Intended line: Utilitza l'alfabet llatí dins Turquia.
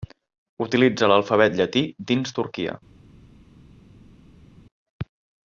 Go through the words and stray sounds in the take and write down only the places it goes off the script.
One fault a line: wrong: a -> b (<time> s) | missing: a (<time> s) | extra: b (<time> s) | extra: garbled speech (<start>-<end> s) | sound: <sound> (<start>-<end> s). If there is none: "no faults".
no faults